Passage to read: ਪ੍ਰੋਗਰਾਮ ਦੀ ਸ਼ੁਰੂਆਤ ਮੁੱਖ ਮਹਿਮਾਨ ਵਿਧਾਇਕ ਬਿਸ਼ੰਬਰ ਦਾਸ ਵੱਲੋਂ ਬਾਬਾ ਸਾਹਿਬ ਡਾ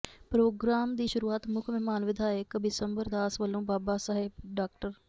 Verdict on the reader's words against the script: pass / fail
pass